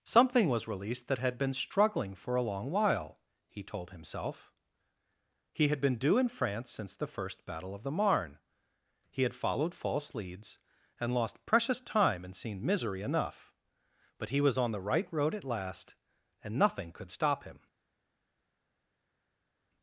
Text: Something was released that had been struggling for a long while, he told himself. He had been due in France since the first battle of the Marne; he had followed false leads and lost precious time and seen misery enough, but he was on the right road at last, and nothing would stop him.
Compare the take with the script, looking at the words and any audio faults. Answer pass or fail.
fail